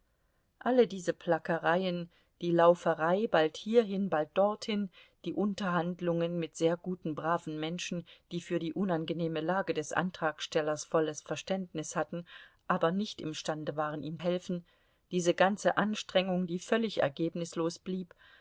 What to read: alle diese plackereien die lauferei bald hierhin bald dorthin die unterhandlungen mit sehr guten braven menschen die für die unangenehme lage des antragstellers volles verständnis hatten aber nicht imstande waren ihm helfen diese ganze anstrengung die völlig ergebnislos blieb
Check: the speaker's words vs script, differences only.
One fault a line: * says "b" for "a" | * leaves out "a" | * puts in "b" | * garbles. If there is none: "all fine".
all fine